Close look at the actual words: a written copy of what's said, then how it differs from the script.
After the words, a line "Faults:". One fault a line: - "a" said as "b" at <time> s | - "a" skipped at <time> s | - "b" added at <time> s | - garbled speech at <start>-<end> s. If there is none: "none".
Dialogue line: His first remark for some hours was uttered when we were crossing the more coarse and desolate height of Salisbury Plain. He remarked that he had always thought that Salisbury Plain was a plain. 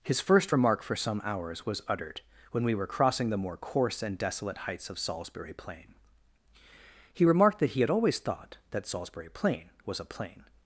His first remark for some hours was uttered when we were crossing the more coarse and desolate heights of Salisbury Plain. He remarked that he had always thought that Salisbury Plain was a plain.
Faults:
- "height" said as "heights" at 4.6 s